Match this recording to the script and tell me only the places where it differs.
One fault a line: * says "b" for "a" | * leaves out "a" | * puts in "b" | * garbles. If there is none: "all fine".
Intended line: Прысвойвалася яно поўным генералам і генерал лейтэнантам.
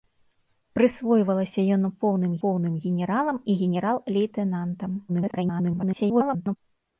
* puts in "поўным"
* garbles